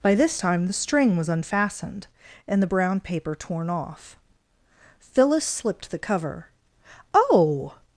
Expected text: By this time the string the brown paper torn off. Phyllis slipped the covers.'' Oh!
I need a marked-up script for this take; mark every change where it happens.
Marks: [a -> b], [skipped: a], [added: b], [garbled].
By this time the string [added: was unfastened and] the brown paper torn off. Phyllis slipped the [covers.'' -> cover] Oh!